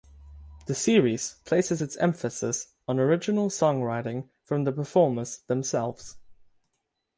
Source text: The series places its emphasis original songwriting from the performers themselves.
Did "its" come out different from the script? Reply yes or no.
no